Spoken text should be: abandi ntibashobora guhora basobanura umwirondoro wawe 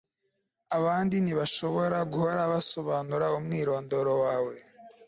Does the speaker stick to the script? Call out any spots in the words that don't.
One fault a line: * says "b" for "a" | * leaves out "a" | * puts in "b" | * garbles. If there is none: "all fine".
all fine